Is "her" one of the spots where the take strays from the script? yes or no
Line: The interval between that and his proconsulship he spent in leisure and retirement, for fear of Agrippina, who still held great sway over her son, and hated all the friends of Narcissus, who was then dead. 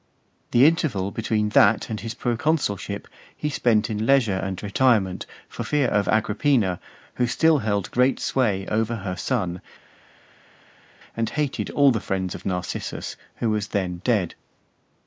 no